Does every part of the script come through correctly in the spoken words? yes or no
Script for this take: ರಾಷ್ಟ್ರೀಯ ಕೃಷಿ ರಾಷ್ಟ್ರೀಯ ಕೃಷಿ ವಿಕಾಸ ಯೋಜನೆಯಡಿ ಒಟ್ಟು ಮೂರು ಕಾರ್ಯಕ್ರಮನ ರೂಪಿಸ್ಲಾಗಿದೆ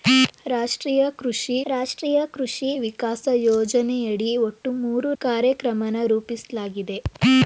yes